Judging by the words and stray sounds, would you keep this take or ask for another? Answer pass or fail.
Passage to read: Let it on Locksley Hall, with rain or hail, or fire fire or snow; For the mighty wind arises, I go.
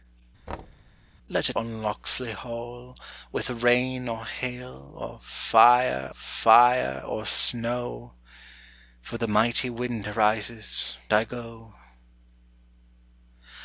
fail